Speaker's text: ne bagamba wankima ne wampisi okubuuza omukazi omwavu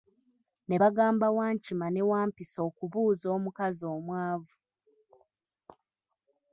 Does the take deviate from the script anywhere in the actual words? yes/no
no